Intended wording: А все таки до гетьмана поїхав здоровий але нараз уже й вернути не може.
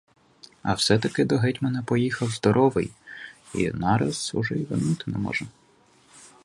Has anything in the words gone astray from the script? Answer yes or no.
yes